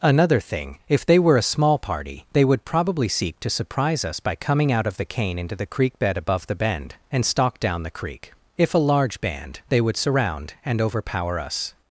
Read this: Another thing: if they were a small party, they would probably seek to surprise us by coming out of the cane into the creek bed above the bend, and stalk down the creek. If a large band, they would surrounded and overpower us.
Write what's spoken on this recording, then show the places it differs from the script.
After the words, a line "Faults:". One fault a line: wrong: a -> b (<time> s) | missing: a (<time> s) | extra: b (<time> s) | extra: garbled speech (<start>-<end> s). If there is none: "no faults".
Another thing: if they were a small party, they would probably seek to surprise us by coming out of the cane into the creek bed above the bend, and stalk down the creek. If a large band, they would surround and overpower us.
Faults:
wrong: surrounded -> surround (10.0 s)